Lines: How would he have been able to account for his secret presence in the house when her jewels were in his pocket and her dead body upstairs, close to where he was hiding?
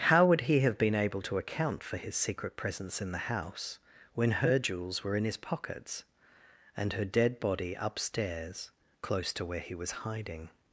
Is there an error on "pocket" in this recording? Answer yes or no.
yes